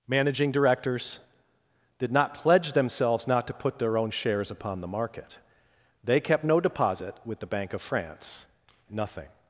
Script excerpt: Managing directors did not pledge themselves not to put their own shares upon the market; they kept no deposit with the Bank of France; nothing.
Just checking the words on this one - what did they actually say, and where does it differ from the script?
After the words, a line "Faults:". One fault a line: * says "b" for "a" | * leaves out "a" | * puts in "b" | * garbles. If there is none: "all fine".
Managing directors did not pledge themselves not to put their own shares upon the market; they kept no deposit with the Bank of France; nothing.
Faults:
all fine